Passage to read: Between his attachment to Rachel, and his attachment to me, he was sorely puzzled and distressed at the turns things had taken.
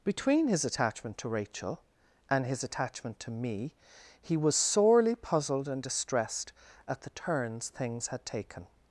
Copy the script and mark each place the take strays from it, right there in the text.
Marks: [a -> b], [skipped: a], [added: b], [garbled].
Between his attachment to Rachel, and his attachment to me, he was sorely puzzled and distressed at the turns things had taken.